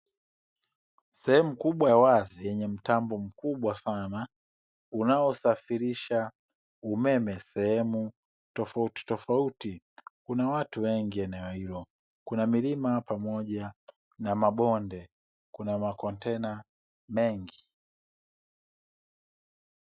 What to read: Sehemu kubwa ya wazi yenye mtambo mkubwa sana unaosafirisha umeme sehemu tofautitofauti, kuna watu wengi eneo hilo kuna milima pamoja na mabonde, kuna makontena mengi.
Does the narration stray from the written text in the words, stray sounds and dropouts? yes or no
no